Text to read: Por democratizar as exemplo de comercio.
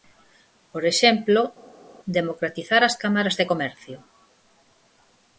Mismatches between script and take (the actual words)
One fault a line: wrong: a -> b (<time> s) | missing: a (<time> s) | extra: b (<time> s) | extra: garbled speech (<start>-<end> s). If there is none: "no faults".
extra: exemplo (0.9 s)
wrong: exemplo -> cámaras (3.0 s)